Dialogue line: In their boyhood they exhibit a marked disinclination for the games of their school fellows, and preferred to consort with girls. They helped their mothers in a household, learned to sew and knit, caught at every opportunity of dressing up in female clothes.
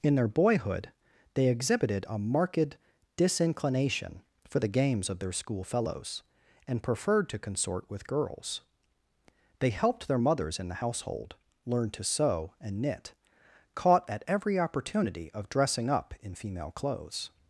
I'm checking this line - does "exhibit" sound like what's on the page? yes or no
no